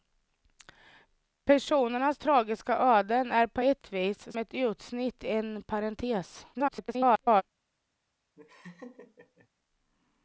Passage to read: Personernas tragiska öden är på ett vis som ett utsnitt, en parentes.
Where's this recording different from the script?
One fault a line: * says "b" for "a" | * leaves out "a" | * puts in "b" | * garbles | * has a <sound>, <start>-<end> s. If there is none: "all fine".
* leaves out "som"
* garbles
* has a laugh, 8.3-9.5 s